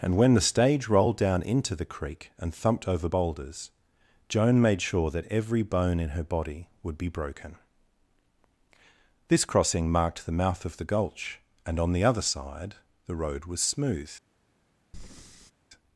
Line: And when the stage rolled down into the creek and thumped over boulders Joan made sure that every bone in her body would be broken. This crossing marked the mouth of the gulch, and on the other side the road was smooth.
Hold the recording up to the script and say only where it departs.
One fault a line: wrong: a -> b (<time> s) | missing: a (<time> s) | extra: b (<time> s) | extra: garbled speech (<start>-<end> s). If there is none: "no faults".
no faults